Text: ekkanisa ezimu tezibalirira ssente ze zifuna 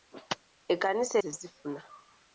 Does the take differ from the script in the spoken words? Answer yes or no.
yes